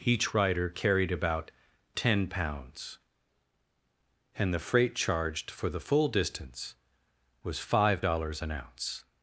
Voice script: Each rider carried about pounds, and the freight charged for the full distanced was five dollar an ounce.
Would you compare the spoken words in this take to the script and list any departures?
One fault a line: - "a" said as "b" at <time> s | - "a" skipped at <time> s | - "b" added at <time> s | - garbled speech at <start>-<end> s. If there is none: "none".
- "ten" added at 1.9 s
- "distanced" said as "distance" at 6.1 s
- "dollar" said as "dollars" at 8.0 s